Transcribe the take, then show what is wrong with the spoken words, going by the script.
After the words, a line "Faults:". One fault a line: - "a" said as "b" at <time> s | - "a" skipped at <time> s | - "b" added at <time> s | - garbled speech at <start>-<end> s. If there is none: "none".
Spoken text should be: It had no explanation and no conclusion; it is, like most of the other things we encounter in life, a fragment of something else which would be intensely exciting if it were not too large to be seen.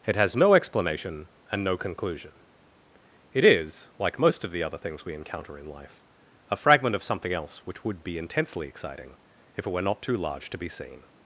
It has no explanation and no conclusion; it is, like most of the other things we encounter in life, a fragment of something else which would be intensely exciting if it were not too large to be seen.
Faults:
- "had" said as "has" at 0.1 s